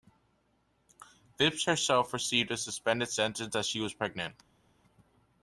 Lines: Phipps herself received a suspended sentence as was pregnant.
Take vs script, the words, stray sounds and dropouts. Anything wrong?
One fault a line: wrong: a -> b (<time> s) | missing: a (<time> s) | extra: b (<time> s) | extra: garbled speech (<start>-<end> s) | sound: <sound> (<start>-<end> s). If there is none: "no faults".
extra: she (3.7 s)